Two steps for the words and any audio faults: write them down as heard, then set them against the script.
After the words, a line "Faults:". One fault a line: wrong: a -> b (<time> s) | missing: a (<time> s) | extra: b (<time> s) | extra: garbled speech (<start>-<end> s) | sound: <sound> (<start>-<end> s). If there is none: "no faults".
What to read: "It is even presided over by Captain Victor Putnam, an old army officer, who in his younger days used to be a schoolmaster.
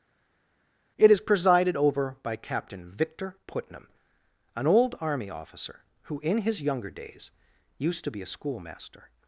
"It is presided over by Captain Victor Putnam, an old army officer, who in his younger days used to be a schoolmaster.
Faults:
missing: even (1.2 s)